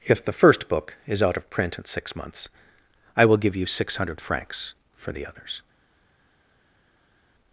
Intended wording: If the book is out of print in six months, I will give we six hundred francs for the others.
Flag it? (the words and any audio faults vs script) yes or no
yes